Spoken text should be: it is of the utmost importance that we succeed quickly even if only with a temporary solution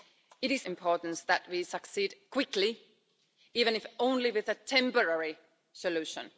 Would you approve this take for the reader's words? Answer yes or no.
no